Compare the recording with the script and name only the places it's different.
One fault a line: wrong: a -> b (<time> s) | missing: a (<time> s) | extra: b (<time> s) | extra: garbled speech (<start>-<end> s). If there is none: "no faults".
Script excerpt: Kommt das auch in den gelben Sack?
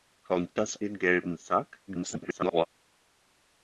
missing: auch in (0.8 s)
extra: garbled speech (1.9-2.7 s)